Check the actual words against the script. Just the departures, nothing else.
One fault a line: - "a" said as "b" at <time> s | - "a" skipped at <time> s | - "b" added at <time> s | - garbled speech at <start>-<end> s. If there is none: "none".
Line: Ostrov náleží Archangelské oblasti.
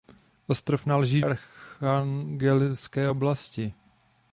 none